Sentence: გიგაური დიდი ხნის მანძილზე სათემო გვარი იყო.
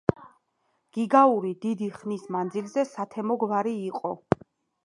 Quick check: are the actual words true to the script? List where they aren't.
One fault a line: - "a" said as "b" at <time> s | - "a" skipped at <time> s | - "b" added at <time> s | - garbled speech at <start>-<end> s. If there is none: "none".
none